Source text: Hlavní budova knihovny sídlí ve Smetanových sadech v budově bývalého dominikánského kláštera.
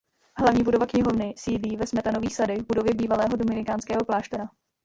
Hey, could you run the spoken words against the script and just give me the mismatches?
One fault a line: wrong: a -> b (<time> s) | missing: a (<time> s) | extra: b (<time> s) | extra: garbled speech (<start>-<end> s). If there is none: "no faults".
no faults